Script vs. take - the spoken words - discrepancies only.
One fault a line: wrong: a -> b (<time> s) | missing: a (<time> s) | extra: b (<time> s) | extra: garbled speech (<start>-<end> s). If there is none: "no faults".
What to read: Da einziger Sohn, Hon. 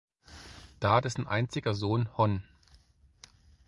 extra: dessen (1.0 s)